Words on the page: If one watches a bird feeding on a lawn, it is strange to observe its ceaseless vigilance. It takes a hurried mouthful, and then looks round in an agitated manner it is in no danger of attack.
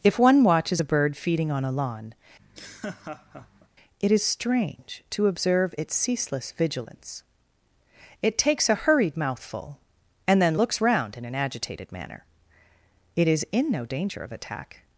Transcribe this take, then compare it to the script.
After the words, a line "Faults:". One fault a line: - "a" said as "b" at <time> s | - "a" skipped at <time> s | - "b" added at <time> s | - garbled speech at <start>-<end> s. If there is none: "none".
If one watches a bird feeding on a lawn, it is strange to observe its ceaseless vigilance. It takes a hurried mouthful, and then looks round in an agitated manner it is in no danger of attack.
Faults:
none